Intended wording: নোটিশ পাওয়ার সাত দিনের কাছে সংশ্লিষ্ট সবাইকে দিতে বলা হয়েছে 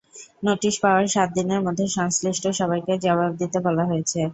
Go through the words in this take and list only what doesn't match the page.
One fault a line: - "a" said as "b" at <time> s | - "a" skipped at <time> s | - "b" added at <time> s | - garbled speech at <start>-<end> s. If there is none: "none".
- "কাছে" said as "মধ্যে" at 1.6 s
- "জবাব" added at 3.0 s